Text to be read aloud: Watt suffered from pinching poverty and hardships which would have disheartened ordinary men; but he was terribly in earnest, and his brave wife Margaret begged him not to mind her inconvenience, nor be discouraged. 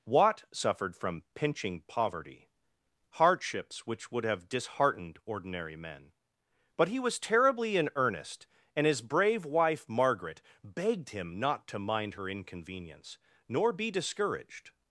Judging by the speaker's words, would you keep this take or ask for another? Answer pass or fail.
fail